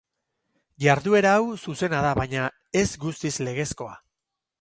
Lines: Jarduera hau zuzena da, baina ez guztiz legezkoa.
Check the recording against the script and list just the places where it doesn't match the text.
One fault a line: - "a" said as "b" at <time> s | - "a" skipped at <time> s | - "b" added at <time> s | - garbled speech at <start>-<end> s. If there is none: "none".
none